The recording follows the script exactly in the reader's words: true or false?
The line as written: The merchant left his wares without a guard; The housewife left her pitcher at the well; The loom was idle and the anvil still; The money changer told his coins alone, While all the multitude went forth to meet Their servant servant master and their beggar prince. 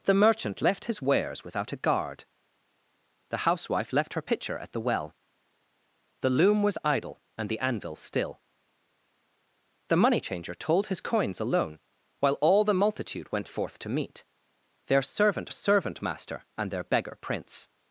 true